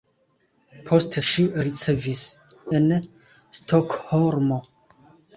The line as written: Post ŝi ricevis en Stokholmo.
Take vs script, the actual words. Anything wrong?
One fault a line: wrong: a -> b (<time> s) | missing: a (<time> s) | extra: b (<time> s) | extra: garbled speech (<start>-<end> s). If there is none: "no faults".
no faults